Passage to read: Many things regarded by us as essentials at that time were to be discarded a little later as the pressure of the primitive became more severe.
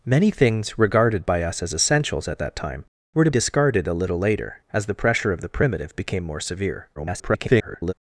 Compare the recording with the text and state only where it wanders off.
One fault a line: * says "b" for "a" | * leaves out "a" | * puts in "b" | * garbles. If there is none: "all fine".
* leaves out "be"
* garbles